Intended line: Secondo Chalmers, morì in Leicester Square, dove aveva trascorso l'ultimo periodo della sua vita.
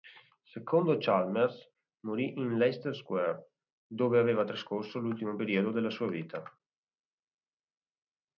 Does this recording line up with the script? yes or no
yes